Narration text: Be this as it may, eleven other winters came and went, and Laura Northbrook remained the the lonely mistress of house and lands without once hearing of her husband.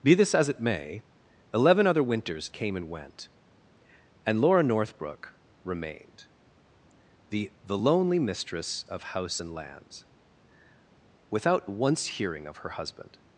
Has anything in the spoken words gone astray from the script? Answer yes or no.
no